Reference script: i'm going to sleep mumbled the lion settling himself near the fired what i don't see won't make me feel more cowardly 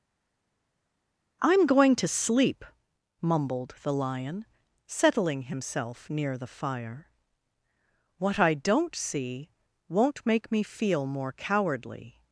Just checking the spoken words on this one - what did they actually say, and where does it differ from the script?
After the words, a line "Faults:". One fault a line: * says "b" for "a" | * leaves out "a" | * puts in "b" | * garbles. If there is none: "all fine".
i'm going to sleep mumbled the lion settling himself near the fire what i don't see won't make me feel more cowardly
Faults:
* says "fire" for "fired"